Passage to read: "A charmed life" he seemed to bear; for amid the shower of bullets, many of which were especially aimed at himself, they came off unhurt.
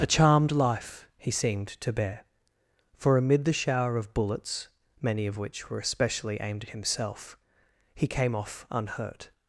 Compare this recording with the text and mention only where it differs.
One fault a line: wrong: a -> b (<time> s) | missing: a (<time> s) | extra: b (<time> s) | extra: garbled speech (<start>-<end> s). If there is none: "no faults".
wrong: they -> he (7.9 s)